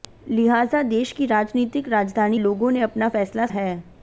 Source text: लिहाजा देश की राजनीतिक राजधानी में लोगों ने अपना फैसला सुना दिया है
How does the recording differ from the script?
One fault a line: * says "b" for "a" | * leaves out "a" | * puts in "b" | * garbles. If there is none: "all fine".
* leaves out "में"
* leaves out "सुना दिया"